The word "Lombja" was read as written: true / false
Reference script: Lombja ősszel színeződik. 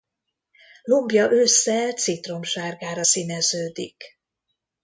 true